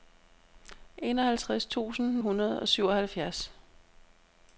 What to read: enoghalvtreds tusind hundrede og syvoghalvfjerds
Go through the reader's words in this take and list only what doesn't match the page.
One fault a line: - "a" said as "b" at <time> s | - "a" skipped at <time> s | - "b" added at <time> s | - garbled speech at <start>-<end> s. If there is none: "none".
none